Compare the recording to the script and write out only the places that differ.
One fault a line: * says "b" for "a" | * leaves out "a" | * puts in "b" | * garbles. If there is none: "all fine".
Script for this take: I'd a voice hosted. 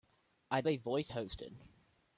all fine